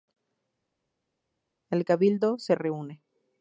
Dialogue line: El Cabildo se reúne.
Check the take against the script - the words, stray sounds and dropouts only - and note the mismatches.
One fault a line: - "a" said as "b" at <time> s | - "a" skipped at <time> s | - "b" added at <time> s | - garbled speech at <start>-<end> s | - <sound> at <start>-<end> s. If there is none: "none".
none